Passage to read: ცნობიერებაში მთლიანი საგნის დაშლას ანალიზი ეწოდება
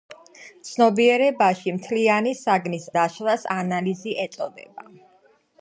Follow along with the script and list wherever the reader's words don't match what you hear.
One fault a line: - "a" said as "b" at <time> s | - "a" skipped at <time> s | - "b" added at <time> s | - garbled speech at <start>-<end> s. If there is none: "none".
none